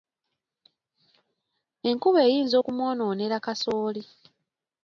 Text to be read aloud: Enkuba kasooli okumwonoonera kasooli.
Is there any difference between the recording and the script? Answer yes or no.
yes